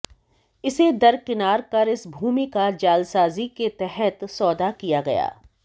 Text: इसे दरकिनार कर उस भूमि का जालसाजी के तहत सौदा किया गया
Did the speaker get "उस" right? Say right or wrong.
wrong